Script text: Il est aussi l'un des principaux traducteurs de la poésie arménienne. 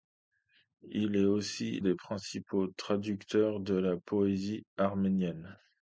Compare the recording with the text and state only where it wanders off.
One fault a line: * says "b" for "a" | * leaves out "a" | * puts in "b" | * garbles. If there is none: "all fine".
* leaves out "l'un"